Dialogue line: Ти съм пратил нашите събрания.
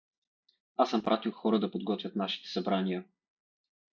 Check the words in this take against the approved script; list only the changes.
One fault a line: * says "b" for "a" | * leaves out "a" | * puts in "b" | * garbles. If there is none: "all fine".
* says "Аз" for "Ти"
* puts in "хора да подготвят"